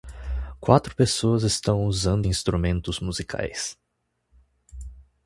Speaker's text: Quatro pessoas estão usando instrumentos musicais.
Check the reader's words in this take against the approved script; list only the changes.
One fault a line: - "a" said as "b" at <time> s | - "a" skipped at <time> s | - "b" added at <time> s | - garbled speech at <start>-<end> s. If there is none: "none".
none